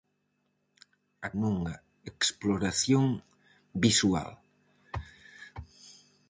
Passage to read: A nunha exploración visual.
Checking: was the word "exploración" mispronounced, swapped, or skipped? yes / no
no